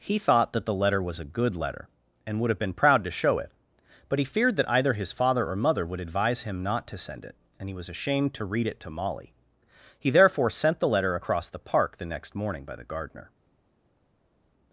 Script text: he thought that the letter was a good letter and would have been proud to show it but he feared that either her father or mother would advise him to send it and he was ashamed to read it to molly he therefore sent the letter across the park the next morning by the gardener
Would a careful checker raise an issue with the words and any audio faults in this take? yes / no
yes